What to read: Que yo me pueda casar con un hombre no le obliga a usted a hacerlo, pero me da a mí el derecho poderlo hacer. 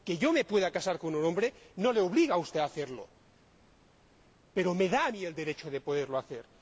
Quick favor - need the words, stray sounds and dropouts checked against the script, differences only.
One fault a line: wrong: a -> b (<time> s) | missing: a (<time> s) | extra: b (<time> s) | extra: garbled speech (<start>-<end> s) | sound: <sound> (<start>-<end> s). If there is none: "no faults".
extra: de (5.7 s)